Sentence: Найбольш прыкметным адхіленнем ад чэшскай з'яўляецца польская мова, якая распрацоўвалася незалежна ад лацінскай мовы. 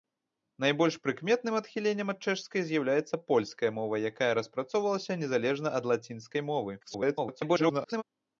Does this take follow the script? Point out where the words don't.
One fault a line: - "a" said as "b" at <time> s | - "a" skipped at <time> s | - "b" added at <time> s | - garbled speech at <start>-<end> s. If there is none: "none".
- garbled speech at 6.8-8.0 s